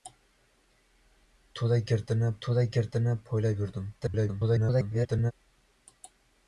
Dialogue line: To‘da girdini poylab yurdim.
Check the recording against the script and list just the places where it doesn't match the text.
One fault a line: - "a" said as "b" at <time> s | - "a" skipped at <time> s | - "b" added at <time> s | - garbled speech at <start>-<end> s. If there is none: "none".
- "to‘da girdini" added at 2.5 s
- garbled speech at 4.0-5.3 s